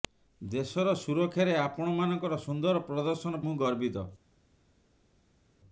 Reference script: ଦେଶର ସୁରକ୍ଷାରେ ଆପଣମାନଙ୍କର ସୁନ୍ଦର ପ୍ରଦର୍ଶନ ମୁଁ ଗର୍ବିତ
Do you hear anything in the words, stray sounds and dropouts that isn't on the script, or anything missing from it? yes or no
no